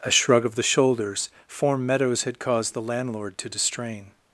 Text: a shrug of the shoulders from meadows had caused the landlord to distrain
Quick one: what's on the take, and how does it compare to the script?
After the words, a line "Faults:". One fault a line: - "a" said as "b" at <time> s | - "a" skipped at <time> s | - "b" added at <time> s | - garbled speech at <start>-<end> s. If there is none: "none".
a shrug of the shoulders form meadows had caused the landlord to distrain
Faults:
- "from" said as "form" at 1.4 s